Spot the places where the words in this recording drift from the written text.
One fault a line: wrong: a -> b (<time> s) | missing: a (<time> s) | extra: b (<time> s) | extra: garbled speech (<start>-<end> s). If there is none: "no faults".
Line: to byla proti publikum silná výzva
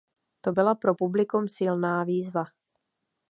wrong: proti -> pro (0.7 s)